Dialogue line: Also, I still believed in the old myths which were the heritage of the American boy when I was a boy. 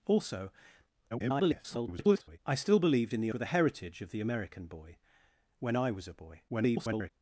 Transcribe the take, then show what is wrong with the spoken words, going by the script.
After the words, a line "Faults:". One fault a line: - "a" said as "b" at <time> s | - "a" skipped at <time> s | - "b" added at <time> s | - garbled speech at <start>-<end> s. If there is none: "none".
Also, [garbled] I still believed in the were the heritage of the American boy when I was a boy. [garbled]
Faults:
- garbled speech at 1.1-2.4 s
- "old myths which" skipped at 3.3 s
- garbled speech at 6.5-7.1 s